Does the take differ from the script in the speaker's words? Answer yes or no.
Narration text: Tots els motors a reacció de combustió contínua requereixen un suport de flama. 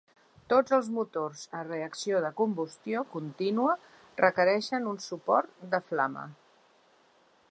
no